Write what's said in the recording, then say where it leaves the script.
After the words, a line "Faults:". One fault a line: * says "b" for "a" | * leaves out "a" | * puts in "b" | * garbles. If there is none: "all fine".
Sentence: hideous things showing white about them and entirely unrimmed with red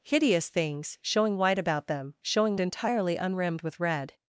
hideous things showing white about them showing entirely unrimmed with red
Faults:
* says "showing" for "and"